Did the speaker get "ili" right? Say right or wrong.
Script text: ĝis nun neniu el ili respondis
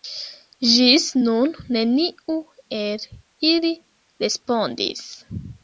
right